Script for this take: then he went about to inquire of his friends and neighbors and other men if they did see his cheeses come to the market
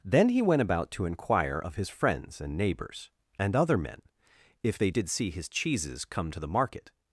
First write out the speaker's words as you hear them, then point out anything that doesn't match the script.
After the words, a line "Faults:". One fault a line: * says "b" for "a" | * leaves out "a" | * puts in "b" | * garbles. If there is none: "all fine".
then he went about to inquire of his friends and neighbors and other men if they did see his cheeses come to the market
Faults:
all fine